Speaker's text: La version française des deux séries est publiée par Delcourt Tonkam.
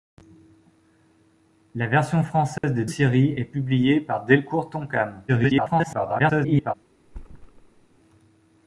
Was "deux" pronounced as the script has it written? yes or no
no